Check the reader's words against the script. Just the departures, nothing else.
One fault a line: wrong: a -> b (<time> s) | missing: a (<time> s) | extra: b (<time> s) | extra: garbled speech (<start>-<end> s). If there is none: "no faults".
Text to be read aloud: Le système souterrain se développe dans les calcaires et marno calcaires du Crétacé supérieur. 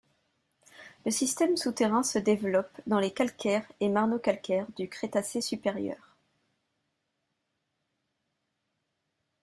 no faults